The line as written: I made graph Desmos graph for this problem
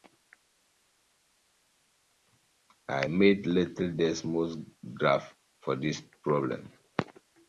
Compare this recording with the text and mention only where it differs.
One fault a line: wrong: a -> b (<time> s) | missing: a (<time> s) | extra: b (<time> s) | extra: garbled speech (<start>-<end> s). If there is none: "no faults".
wrong: graph -> little (3.5 s)